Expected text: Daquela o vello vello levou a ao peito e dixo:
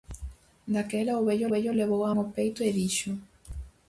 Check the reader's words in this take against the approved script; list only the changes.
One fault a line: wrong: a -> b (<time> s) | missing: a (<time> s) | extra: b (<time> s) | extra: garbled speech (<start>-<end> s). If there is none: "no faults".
no faults